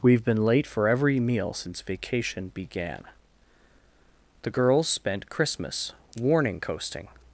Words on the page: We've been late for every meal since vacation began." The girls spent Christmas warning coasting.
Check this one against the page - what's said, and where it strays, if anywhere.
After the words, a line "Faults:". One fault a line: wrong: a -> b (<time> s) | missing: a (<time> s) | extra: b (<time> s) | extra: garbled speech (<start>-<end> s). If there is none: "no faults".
We've been late for every meal since vacation began." The girls spent Christmas warning coasting.
Faults:
no faults